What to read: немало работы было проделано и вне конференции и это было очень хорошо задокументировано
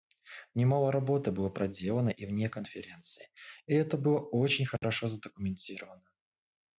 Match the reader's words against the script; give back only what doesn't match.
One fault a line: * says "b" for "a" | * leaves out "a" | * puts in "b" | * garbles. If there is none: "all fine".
all fine